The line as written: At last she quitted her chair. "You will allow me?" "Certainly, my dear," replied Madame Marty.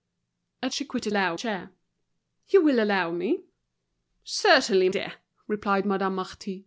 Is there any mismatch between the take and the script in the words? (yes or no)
yes